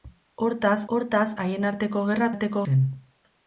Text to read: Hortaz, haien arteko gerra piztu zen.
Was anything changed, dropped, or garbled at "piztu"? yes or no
yes